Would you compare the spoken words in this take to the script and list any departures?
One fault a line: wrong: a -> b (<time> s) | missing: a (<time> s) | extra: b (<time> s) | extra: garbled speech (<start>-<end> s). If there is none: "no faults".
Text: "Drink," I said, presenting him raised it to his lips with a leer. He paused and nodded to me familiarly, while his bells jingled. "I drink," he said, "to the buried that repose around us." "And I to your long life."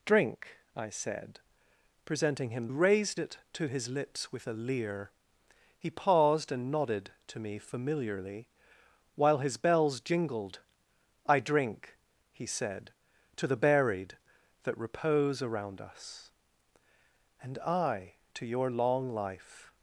no faults